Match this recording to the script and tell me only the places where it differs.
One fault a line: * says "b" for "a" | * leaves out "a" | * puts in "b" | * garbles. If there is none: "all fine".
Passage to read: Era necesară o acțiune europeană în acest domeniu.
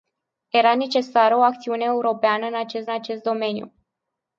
* puts in "acest"